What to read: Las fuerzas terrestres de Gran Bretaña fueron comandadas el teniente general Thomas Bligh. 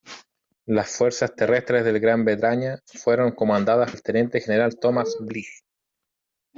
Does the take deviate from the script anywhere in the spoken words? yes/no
no